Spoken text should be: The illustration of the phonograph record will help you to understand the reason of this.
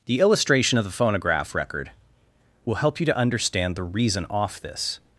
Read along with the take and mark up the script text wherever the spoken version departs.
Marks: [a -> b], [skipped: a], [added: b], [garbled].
The illustration of the phonograph record will help you to understand the reason [of -> off] this.